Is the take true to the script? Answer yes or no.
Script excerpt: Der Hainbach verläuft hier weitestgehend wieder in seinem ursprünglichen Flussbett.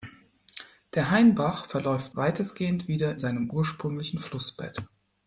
no